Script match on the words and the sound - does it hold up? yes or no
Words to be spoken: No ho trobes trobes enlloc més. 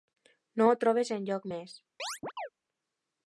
no